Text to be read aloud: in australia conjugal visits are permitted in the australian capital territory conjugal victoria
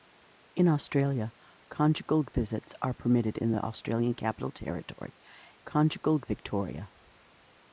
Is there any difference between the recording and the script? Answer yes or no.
no